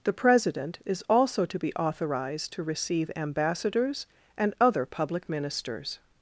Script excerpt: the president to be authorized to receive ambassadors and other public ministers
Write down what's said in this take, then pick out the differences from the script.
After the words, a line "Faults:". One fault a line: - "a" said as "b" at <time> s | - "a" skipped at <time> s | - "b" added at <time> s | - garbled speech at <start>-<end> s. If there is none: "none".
the president is also to be authorized to receive ambassadors and other public ministers
Faults:
- "is also" added at 0.8 s